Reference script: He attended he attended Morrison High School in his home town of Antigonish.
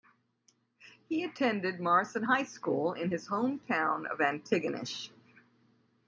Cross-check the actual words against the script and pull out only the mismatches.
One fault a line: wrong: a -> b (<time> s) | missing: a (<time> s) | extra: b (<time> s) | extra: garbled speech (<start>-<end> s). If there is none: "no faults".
missing: he attended (1.8 s)